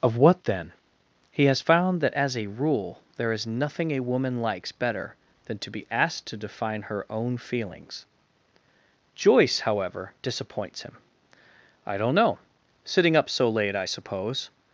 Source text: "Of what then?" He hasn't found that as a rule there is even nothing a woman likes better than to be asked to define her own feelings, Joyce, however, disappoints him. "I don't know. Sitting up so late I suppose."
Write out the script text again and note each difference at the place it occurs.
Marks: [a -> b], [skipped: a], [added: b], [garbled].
"Of what then?" He [hasn't -> has] found that as a rule there is [skipped: even] nothing a woman likes better than to be asked to define her own feelings, Joyce, however, disappoints him. "I don't know. Sitting up so late I suppose."